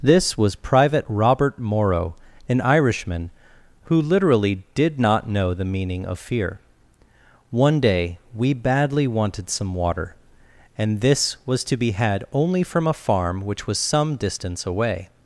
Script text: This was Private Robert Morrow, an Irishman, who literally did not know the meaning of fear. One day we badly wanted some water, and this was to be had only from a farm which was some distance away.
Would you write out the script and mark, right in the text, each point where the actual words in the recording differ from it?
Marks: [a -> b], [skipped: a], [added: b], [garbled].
This was Private Robert Morrow, an Irishman, who literally did not know the meaning of fear. One day we badly wanted some water, and this was to be had only from a farm which was some distance away.